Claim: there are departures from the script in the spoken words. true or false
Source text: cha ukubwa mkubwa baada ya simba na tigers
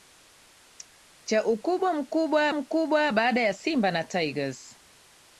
true